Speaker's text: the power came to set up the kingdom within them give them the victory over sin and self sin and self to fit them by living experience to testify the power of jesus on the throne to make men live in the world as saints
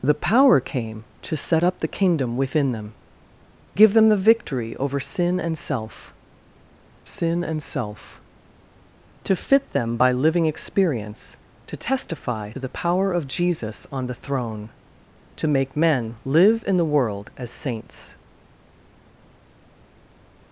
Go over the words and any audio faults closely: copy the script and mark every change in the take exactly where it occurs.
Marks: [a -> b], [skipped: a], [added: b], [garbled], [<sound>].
the power came to set up the kingdom within them give them the victory over sin and self sin and self to fit them by living experience to testify the power of jesus on the throne to make men live in the world as saints